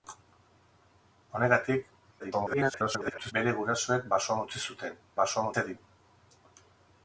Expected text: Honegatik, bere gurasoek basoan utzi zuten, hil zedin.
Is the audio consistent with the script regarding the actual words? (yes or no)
no